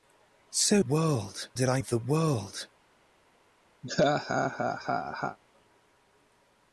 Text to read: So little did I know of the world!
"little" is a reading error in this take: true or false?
true